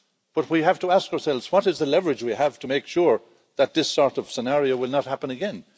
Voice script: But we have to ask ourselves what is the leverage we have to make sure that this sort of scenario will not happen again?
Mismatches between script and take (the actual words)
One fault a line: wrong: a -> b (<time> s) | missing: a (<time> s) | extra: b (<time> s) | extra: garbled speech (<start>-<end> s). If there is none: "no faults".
no faults